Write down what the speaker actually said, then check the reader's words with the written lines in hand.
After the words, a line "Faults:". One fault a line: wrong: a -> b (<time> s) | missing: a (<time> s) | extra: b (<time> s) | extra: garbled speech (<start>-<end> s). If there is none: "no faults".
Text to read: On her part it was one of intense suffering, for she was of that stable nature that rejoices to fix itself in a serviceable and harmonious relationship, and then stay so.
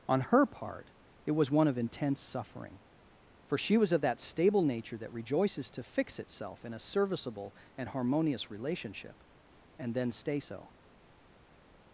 On her part it was one of intense suffering, for she was of that stable nature that rejoices to fix itself in a serviceable and harmonious relationship, and then stay so.
Faults:
no faults